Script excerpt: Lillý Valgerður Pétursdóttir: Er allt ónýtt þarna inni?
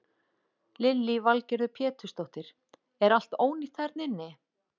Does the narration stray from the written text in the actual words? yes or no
no